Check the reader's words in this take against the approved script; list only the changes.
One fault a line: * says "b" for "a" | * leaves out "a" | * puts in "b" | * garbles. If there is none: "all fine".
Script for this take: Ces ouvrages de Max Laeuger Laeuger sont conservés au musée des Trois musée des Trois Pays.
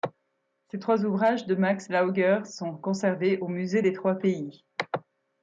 * puts in "trois"
* leaves out "Laeuger"
* leaves out "musée des Trois"